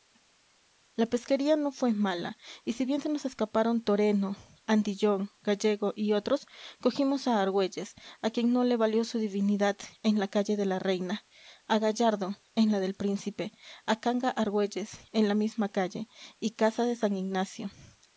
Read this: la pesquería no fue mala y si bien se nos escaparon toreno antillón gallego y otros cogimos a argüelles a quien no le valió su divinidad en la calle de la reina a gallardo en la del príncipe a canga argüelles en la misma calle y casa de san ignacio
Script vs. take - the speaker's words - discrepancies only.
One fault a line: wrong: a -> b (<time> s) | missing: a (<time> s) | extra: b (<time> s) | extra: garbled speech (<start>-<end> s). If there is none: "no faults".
no faults